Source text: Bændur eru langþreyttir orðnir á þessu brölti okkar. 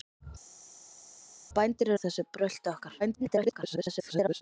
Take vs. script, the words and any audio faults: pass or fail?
fail